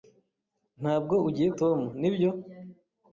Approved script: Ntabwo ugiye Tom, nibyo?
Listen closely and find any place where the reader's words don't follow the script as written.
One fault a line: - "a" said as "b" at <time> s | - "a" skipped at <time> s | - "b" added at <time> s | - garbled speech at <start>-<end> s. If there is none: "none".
none